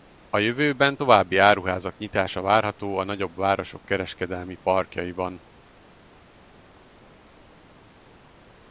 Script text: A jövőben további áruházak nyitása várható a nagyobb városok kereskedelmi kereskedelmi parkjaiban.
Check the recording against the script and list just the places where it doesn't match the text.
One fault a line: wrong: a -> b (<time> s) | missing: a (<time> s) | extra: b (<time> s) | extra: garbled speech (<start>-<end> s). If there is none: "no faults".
missing: kereskedelmi (4.6 s)